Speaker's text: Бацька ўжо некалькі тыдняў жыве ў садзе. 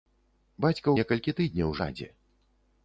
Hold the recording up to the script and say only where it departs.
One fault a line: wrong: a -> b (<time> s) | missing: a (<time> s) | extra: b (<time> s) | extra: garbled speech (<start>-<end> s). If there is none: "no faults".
missing: ўжо (0.9 s)
missing: жыве ў (1.8 s)